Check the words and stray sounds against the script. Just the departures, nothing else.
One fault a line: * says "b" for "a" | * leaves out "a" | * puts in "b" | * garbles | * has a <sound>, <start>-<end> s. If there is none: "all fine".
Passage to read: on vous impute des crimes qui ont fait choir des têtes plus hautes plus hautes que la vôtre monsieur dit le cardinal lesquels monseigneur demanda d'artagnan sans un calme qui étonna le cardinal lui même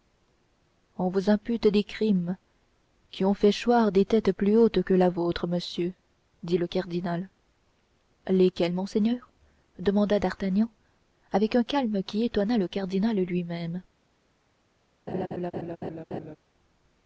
* leaves out "plus hautes"
* says "avec" for "sans"
* has a laugh, 15.1-16.4 s